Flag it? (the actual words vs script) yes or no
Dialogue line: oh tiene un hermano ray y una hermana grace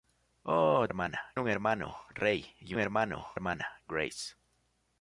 yes